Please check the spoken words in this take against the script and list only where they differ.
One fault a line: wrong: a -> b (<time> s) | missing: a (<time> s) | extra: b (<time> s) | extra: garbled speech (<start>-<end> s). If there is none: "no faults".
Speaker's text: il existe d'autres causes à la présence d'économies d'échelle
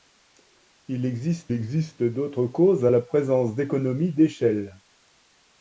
extra: existe (1.5 s)